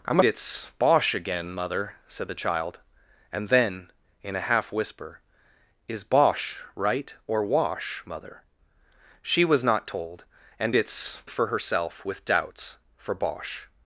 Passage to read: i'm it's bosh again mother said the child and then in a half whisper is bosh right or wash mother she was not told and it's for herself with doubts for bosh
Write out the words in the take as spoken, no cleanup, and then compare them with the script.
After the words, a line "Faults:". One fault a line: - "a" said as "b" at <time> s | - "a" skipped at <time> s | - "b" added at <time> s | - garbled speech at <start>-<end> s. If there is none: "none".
i'm it's bosh again mother said the child and then in a half whisper is bosh right or wash mother she was not told and it's for herself with doubts for bosh
Faults:
none